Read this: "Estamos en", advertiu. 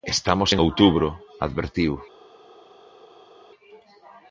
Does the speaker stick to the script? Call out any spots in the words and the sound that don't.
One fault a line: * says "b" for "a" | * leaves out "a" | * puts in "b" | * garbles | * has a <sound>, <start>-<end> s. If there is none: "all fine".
* puts in "outubro"